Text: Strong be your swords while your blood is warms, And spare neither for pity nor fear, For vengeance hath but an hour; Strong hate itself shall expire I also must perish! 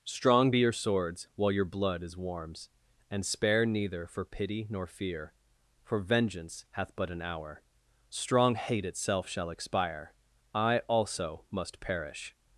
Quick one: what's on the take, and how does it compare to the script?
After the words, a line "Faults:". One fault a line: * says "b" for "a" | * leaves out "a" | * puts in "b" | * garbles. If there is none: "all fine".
Strong be your swords while your blood is warms, And spare neither for pity nor fear, For vengeance hath but an hour; Strong hate itself shall expire I also must perish!
Faults:
all fine